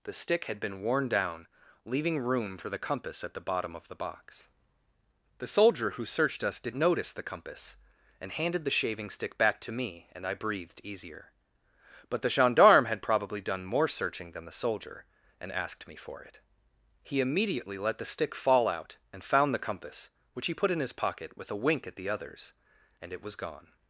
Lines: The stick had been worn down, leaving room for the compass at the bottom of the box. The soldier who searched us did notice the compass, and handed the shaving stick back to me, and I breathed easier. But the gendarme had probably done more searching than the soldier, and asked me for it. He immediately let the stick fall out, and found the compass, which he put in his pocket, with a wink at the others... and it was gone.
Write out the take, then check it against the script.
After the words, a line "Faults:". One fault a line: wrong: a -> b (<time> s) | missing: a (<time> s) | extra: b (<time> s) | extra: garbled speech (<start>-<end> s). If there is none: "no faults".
The stick had been worn down, leaving room for the compass at the bottom of the box. The soldier who searched us did notice the compass, and handed the shaving stick back to me, and I breathed easier. But the gendarme had probably done more searching than the soldier, and asked me for it. He immediately let the stick fall out, and found the compass, which he put in his pocket, with a wink at the others... and it was gone.
Faults:
no faults